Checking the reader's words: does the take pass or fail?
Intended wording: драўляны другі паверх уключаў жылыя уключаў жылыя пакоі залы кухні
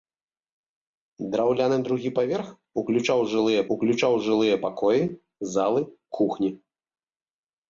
pass